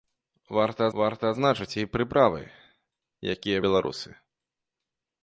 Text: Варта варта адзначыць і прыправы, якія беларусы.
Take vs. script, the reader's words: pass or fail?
pass